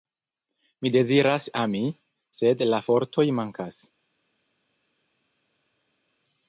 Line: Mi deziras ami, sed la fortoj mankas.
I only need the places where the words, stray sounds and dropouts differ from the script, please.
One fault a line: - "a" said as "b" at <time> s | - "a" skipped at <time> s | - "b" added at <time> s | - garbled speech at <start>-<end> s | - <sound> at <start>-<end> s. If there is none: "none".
none